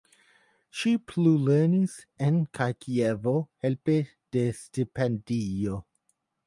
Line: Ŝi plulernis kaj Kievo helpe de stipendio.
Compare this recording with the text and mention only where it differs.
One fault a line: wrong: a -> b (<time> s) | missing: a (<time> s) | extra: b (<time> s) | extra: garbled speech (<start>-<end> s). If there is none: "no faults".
extra: en (2.3 s)